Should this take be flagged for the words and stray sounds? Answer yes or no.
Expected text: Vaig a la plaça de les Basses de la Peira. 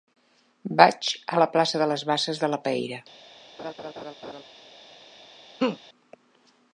yes